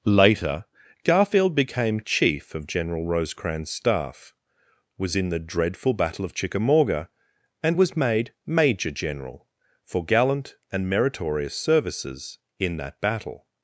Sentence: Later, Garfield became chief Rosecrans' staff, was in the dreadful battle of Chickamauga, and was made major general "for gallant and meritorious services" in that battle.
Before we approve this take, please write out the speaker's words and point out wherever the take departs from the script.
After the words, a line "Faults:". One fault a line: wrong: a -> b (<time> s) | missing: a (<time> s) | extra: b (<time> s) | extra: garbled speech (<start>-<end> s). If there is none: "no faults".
Later, Garfield became chief of General Rosecrans' staff, was in the dreadful battle of Chickamauga, and was made major general "for gallant and meritorious services" in that battle.
Faults:
extra: of General (2.5 s)